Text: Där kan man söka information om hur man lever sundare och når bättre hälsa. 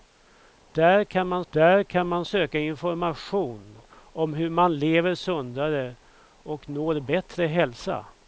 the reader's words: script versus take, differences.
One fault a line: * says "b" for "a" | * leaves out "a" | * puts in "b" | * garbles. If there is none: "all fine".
* puts in "där kan man"